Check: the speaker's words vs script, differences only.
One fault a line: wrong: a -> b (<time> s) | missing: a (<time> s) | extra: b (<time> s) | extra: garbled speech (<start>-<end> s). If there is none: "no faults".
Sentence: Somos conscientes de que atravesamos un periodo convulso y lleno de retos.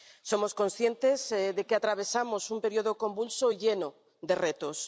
no faults